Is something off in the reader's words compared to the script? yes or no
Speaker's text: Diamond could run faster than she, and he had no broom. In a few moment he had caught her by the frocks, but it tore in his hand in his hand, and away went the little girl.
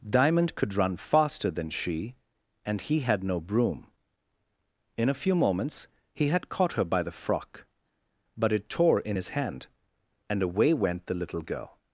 yes